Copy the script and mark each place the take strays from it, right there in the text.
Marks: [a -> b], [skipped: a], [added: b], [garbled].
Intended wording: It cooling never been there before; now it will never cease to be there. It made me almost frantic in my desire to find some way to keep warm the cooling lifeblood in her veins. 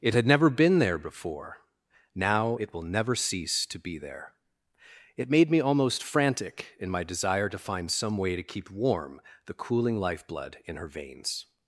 It [cooling -> had] never been there before; now it will never cease to be there. It made me almost frantic in my desire to find some way to keep warm the cooling lifeblood in her veins.